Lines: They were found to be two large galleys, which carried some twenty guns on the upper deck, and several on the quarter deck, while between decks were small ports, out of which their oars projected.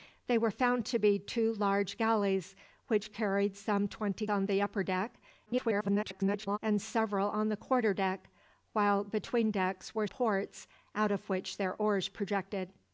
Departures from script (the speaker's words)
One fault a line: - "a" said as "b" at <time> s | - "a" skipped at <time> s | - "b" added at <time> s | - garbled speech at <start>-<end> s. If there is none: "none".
- "guns" skipped at 4.2 s
- garbled speech at 5.5-6.6 s
- "small" skipped at 10.1 s